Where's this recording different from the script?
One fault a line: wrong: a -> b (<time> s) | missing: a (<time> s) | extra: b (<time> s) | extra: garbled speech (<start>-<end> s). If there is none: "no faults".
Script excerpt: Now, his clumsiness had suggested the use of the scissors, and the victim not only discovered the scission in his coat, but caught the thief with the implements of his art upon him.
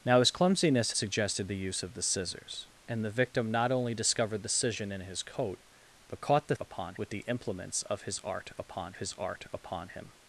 missing: had (0.9 s)
wrong: thief -> upon (6.6 s)
extra: his art upon (9.0 s)